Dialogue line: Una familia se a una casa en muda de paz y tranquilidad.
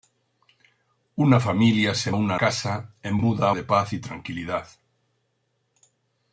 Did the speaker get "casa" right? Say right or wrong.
right